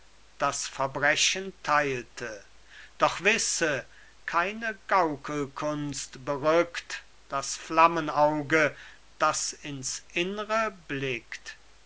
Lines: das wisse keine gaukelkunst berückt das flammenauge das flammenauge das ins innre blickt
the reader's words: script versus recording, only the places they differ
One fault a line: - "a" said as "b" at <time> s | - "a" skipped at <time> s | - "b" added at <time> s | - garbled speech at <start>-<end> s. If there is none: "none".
- "verbrechen teilte doch" added at 0.7 s
- "flammenauge das" skipped at 9.5 s